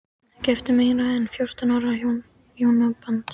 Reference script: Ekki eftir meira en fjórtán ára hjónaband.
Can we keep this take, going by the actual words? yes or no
yes